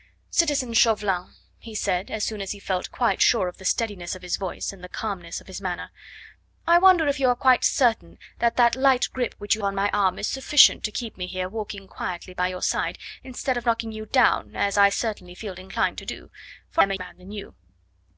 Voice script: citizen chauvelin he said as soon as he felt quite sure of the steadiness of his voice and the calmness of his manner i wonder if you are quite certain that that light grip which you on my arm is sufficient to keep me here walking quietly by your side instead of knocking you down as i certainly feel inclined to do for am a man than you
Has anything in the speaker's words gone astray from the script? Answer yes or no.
no